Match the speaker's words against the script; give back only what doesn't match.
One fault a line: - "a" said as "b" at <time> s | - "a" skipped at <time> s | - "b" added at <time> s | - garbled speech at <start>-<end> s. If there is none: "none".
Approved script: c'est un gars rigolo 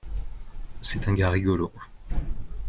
none